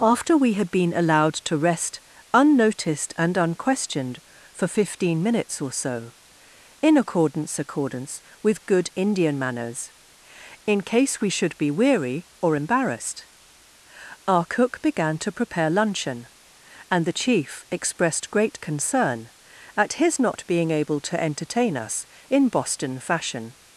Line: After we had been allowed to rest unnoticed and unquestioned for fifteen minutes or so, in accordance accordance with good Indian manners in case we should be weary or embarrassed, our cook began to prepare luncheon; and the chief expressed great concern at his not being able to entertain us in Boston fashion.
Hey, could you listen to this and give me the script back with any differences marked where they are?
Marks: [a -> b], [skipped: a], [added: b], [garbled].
After we had been allowed to rest unnoticed and unquestioned for fifteen minutes or so, in accordance accordance with good Indian manners in case we should be weary or embarrassed, our cook began to prepare luncheon; and the chief expressed great concern at his not being able to entertain us in Boston fashion.